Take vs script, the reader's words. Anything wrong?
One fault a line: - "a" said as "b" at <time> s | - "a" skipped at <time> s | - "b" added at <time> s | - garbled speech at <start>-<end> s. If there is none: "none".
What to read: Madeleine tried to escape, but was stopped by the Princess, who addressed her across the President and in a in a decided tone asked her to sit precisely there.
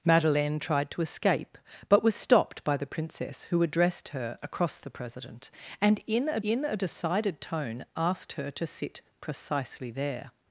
none